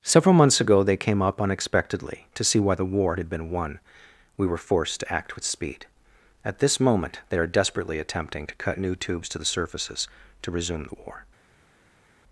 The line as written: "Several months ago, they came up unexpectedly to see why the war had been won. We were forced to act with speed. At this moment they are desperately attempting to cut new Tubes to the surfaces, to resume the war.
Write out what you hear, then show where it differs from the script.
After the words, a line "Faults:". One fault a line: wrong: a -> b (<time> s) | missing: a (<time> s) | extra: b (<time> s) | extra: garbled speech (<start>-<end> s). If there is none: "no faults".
"Several months ago, they came up unexpectedly to see why the war had been won. We were forced to act with speed. At this moment they are desperately attempting to cut new Tubes to the surfaces, to resume the war.
Faults:
no faults